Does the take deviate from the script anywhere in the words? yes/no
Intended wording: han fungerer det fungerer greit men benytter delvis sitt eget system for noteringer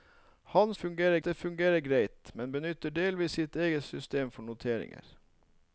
no